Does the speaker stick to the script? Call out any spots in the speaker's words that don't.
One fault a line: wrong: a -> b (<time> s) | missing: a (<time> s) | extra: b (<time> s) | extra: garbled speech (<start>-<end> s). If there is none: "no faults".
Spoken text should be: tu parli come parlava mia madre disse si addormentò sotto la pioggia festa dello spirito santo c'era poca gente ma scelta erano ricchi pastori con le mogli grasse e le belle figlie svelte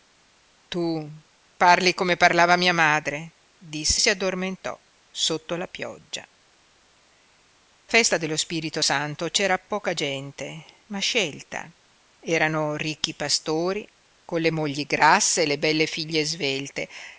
no faults